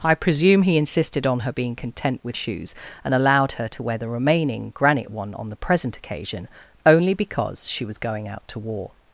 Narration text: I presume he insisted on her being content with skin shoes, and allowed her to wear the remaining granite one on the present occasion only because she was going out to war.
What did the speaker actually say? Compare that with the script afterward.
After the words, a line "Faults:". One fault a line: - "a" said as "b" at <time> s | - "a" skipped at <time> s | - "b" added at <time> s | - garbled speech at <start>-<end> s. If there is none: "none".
I presume he insisted on her being content with shoes, and allowed her to wear the remaining granite one on the present occasion only because she was going out to war.
Faults:
- "skin" skipped at 2.4 s